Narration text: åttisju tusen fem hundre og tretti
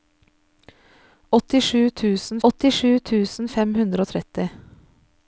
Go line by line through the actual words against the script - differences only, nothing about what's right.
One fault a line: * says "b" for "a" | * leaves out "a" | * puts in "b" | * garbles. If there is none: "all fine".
* puts in "åttisju tusen"